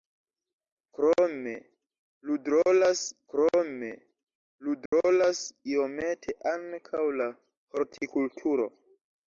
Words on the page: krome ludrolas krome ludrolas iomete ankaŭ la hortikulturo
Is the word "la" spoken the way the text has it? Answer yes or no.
yes